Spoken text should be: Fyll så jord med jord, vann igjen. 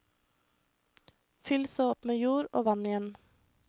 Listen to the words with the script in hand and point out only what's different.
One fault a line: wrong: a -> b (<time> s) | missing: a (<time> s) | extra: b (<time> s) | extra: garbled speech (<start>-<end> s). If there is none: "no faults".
wrong: jord -> opp (1.9 s)
extra: og (2.5 s)